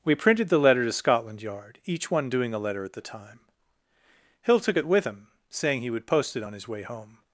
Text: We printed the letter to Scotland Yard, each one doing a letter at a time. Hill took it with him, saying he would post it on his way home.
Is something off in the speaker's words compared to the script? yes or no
yes